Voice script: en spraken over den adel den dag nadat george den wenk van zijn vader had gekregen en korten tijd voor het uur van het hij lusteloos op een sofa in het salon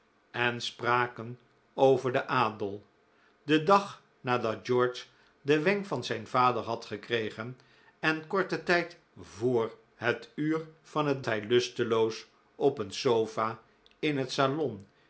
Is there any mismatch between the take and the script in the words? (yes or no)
no